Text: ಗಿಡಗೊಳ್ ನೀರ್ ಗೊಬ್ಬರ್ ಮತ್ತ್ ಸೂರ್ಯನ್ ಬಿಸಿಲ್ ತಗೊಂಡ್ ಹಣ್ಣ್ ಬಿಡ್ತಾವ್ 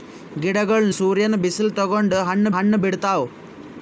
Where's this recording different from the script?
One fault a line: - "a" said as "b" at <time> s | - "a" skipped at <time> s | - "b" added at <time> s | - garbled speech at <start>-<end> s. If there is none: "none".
- "ನೀರ್ ಗೊಬ್ಬರ್ ಮತ್ತ್" skipped at 0.9 s
- "ಹಣ್ಣ್" added at 2.6 s